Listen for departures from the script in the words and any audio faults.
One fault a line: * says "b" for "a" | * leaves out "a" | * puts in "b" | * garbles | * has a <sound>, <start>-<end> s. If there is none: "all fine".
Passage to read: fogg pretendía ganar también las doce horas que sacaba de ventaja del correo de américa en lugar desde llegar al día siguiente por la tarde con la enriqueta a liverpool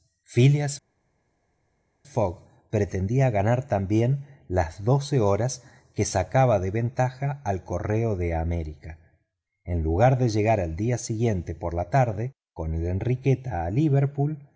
* says "al" for "del"
* says "de" for "desde"